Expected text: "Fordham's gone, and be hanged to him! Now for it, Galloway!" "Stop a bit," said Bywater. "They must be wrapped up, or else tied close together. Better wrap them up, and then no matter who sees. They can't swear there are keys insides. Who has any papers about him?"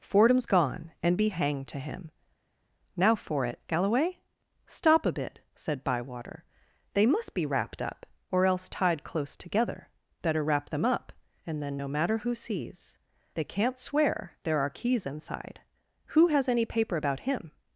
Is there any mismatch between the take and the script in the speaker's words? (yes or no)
yes